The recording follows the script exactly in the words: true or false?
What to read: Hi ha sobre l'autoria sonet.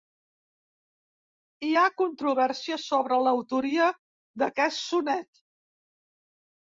false